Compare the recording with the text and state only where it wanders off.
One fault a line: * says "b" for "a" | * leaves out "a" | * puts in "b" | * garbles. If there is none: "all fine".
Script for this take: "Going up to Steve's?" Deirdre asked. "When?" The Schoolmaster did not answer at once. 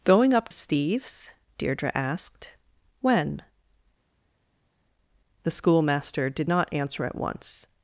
* leaves out "to"